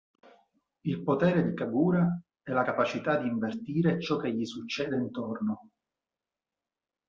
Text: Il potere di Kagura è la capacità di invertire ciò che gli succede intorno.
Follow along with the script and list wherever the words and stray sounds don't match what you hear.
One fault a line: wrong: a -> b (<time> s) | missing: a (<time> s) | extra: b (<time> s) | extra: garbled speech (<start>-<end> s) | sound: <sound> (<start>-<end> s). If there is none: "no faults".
no faults